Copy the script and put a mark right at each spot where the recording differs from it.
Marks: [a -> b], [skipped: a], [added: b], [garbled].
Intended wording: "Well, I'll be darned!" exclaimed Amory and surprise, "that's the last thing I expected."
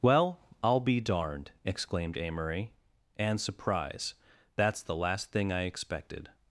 "Well, I'll be darned!" exclaimed Amory and surprise, "that's the last thing I expected."